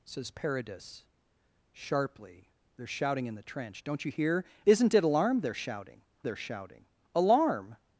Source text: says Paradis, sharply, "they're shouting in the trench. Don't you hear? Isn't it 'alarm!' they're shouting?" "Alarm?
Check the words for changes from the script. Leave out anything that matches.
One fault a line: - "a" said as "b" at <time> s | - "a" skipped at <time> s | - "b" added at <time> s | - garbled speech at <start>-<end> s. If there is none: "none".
- "they're shouting" added at 6.2 s